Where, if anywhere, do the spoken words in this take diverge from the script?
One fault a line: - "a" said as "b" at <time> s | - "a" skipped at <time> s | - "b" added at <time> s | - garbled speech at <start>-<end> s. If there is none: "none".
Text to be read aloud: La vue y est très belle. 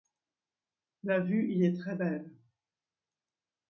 none